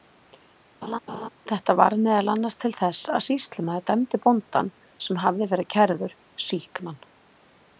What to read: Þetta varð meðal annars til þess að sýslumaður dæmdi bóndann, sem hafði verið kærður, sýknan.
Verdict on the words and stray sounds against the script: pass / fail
fail